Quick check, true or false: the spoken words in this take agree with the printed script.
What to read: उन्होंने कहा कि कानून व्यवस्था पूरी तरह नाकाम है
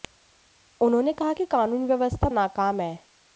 false